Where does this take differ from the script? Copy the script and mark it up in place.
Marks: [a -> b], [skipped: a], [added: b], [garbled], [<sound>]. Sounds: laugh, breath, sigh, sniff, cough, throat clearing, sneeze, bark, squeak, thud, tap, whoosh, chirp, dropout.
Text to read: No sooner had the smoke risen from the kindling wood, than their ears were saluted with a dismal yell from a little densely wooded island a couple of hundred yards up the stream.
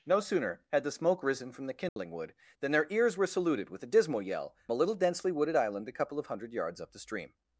No sooner had the smoke risen from the kindling [dropout] wood, than their ears were saluted with a dismal yell [skipped: from] a little densely wooded island a couple of hundred yards up the stream.